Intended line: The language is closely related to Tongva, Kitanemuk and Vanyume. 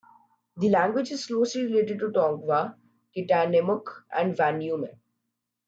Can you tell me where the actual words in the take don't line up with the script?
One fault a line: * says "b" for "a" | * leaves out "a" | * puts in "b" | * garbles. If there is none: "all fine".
all fine